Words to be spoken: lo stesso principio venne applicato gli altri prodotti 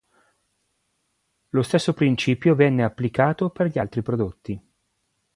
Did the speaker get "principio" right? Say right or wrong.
right